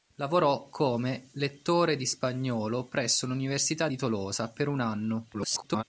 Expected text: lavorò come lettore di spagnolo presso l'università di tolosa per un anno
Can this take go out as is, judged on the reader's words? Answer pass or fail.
fail